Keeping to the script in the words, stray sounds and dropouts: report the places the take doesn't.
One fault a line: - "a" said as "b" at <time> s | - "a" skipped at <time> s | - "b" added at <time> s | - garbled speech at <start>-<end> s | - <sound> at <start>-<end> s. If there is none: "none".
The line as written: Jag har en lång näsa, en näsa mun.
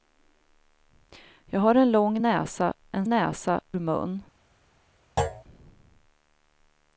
- thud at 5.2-5.4 s